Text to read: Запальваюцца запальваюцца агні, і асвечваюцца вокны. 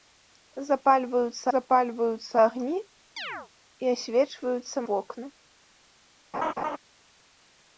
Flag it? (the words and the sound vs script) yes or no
yes